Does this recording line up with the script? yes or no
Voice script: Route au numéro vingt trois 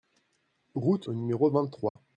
yes